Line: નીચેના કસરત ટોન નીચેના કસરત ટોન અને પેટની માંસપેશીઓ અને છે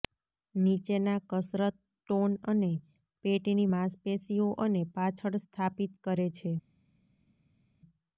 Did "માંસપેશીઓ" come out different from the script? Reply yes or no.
yes